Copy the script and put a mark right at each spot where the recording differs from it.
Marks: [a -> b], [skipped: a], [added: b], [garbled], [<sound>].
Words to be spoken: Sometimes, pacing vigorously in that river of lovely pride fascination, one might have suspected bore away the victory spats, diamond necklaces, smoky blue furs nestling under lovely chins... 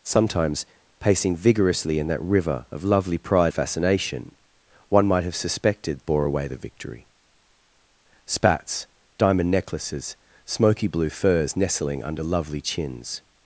Sometimes, pacing vigorously in that river of lovely pride fascination, one might have suspected bore away the victory spats, diamond necklaces, smoky blue furs nestling under lovely chins...